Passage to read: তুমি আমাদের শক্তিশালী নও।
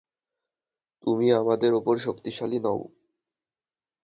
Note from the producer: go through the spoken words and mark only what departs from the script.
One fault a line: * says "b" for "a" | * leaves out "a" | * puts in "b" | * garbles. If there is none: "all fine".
* puts in "উপর"